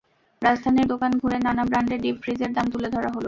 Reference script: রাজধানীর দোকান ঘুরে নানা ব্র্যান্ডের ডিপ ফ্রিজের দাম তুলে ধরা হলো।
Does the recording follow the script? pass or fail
pass